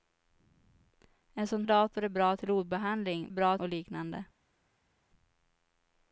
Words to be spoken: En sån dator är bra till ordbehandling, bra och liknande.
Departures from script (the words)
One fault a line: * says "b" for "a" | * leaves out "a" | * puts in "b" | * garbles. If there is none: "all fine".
all fine